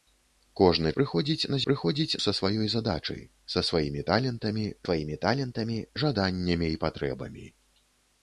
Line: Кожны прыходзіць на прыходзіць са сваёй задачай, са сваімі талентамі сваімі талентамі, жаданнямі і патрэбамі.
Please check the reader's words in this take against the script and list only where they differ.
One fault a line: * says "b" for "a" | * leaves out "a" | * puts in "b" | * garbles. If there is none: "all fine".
all fine